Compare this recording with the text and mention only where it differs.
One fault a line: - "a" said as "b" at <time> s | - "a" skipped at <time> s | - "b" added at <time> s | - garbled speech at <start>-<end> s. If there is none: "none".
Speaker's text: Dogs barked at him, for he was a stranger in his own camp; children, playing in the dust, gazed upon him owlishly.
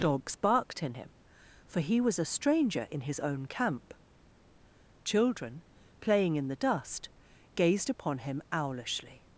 - "at" said as "in" at 0.8 s